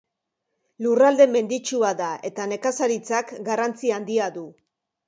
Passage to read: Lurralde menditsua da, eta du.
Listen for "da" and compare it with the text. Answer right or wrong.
right